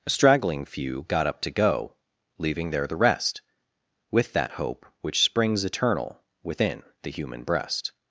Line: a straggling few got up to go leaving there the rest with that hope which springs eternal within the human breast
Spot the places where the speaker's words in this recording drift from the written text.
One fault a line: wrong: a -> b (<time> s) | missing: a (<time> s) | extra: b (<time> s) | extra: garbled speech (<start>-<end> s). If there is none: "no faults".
no faults